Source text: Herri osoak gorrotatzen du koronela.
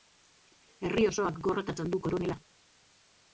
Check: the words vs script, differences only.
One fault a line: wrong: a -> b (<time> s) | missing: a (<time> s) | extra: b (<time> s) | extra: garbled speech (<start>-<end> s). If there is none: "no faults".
no faults